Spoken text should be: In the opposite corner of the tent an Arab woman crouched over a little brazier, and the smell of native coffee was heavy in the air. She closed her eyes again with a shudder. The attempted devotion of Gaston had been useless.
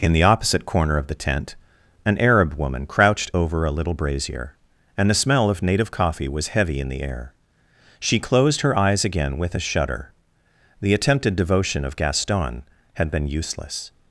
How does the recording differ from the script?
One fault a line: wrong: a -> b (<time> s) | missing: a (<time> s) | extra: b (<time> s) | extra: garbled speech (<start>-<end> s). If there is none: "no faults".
no faults